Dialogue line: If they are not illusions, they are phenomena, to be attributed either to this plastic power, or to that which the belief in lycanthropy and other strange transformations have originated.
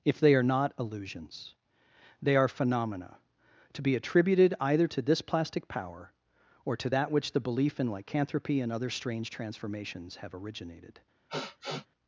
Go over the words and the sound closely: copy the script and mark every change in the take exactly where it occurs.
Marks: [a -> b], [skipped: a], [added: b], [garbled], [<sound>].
If they are not illusions, they are phenomena, to be attributed either to this plastic power, or to that which the belief in lycanthropy and other strange transformations have originated. [sniff]